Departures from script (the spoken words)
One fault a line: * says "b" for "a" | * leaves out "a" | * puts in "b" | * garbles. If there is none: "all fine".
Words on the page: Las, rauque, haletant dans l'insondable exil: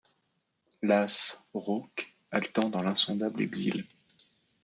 all fine